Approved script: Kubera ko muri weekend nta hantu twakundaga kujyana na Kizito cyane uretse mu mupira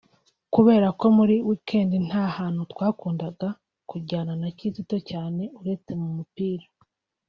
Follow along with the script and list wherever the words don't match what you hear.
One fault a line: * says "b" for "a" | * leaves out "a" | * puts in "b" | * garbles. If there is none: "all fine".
all fine